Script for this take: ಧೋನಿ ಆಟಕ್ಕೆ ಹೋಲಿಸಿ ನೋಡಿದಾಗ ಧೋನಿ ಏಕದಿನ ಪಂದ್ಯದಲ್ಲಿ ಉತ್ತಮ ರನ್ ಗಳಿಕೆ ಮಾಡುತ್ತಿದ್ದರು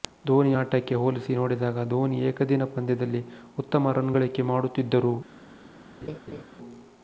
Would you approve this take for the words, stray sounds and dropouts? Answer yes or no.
no